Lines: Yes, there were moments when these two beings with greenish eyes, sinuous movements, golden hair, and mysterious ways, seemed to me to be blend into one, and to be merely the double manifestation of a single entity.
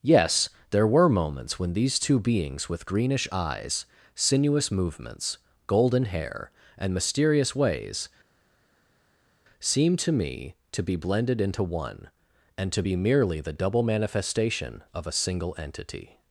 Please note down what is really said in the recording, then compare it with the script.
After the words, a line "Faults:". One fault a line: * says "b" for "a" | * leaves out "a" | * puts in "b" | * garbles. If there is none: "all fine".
Yes, there were moments when these two beings with greenish eyes, sinuous movements, golden hair, and mysterious ways, seemed to me to be blended into one, and to be merely the double manifestation of a single entity.
Faults:
* says "blended" for "blend"